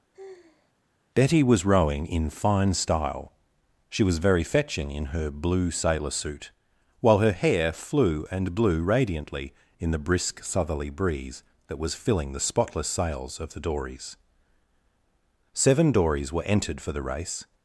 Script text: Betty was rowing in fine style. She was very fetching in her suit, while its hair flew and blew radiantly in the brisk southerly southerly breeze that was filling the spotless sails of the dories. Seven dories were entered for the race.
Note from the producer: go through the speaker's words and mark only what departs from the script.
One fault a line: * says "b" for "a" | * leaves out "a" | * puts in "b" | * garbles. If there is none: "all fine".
* puts in "blue sailor"
* says "her" for "its"
* leaves out "southerly"